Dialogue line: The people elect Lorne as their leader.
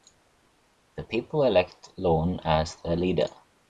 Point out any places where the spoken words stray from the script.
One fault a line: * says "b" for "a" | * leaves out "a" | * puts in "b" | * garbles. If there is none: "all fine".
all fine